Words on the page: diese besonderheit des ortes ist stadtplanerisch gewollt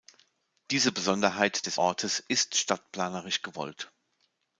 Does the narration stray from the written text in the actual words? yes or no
no